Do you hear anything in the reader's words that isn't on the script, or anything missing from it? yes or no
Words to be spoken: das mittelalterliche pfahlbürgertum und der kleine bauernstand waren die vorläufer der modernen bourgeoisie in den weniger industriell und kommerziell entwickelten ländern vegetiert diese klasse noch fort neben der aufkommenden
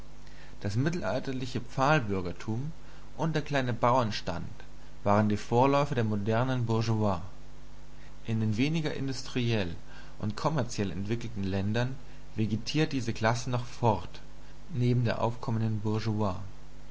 no